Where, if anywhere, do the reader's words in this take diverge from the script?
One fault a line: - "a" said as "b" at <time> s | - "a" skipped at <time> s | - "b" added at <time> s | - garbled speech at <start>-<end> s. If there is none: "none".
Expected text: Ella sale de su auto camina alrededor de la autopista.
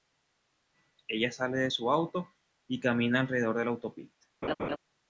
- "y" added at 2.7 s